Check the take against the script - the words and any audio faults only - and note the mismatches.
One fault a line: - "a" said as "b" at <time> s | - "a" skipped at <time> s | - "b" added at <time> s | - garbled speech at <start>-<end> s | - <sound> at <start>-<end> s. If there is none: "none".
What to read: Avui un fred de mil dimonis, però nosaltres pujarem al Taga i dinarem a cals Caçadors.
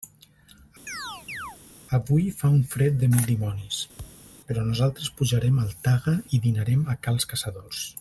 - chirp at 0.9-1.6 s
- "fa" added at 2.4 s
- thud at 4.0-4.3 s